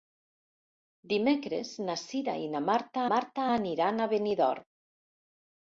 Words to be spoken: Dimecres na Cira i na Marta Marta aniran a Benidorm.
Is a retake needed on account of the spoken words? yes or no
no